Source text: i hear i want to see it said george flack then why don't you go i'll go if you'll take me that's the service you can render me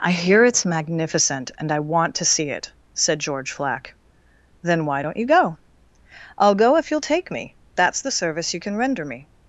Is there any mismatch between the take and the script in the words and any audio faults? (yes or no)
yes